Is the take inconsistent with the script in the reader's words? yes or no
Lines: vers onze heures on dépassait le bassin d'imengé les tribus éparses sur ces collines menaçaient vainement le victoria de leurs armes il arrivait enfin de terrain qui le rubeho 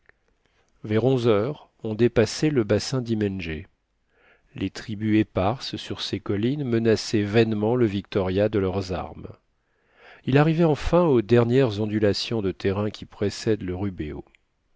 yes